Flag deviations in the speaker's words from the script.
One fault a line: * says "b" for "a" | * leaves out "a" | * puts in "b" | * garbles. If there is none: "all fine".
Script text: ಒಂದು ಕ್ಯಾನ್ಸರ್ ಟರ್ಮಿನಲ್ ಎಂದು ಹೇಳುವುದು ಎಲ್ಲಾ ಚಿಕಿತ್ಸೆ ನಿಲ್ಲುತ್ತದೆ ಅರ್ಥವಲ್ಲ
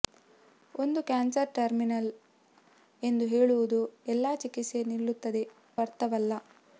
all fine